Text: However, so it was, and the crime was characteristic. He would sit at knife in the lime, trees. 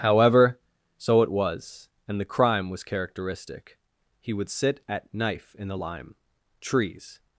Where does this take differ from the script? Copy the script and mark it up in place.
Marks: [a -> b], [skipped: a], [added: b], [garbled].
However, so it was, and the crime was characteristic. He would sit at knife in the lime, trees.